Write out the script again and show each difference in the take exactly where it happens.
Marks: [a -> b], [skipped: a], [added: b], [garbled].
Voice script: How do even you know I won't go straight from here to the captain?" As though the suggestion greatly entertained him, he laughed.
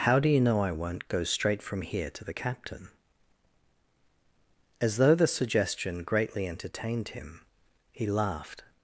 How do [skipped: even] you know I won't go straight from here to the captain?" As though the suggestion greatly entertained him, he laughed.